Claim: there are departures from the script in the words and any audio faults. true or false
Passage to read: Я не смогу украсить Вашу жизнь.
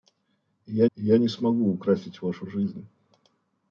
true